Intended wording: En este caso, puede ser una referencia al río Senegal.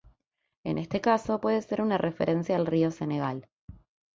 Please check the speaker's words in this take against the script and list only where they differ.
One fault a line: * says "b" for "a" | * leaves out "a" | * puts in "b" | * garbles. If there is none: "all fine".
all fine